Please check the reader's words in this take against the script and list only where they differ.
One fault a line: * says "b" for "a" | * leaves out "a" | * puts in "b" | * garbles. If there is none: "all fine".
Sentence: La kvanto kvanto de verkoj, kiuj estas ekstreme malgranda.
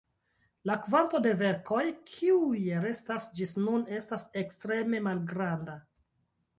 * leaves out "kvanto"
* puts in "restas ĝis nun"